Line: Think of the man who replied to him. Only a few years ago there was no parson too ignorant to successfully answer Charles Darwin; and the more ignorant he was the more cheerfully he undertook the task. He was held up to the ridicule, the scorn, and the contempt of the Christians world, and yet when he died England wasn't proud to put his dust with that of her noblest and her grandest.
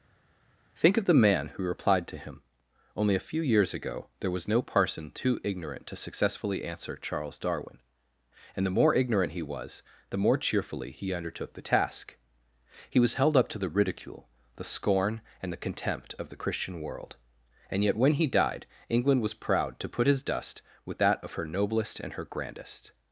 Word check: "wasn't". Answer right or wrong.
wrong